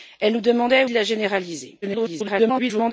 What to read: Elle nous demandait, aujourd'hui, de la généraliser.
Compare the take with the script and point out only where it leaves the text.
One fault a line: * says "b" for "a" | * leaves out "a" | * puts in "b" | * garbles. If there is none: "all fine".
* leaves out "aujourd'hui"
* garbles